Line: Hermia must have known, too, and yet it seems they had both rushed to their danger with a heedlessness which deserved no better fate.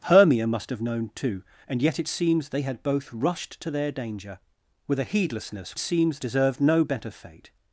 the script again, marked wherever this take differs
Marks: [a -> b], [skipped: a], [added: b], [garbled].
Hermia must have known, too, and yet it seems they had both rushed to their danger with a heedlessness [which -> seems] deserved no better fate.